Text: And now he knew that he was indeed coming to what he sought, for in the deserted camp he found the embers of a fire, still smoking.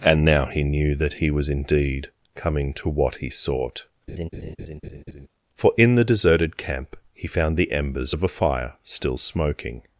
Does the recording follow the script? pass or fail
pass